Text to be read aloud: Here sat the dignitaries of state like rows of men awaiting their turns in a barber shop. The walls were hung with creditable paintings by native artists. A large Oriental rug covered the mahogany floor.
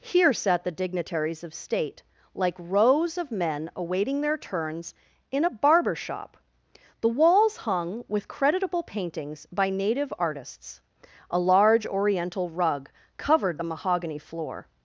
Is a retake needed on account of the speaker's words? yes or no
yes